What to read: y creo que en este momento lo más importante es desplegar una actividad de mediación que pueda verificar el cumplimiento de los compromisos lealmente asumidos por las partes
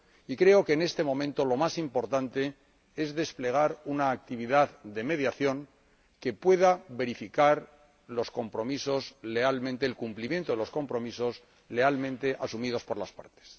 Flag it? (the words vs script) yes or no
no